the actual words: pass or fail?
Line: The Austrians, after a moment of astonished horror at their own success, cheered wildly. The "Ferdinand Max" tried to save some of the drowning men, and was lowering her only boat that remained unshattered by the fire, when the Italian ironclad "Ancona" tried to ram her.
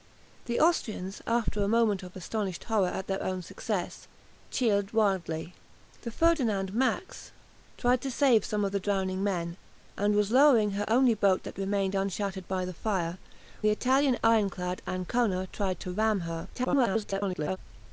fail